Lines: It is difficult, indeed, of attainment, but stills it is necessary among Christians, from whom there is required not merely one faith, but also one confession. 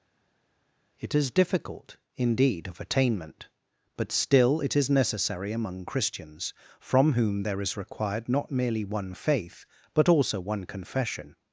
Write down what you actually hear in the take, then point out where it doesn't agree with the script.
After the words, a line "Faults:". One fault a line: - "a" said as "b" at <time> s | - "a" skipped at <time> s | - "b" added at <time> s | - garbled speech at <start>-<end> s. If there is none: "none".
It is difficult, indeed, of attainment, but still it is necessary among Christians, from whom there is required not merely one faith, but also one confession.
Faults:
- "stills" said as "still" at 4.1 s